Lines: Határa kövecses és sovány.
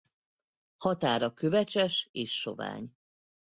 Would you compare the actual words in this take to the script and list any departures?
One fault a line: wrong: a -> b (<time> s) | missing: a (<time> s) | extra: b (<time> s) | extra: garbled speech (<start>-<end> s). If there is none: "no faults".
no faults